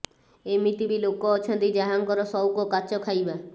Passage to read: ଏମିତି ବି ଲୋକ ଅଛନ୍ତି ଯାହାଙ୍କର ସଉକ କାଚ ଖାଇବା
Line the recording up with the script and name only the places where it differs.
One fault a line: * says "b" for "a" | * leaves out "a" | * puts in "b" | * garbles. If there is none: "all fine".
all fine